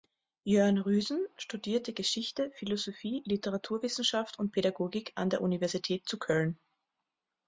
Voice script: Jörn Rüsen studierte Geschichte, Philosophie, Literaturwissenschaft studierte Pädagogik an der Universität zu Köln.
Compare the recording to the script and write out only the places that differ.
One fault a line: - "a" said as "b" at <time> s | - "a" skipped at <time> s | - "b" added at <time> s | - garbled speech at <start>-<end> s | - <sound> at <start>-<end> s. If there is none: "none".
- "studierte" said as "und" at 4.4 s